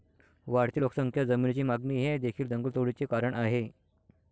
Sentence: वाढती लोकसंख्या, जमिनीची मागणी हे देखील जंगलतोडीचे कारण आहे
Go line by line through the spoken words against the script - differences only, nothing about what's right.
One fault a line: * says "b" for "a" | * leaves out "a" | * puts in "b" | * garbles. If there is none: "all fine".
all fine